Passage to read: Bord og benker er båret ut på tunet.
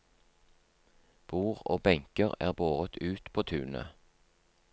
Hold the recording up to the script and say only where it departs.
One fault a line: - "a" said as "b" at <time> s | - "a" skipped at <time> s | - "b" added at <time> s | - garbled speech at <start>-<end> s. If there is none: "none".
none